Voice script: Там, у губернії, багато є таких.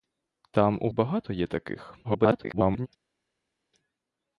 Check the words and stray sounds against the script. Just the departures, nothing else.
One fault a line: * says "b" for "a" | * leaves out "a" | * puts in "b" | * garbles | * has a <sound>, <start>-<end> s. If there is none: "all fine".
* leaves out "губернії"
* garbles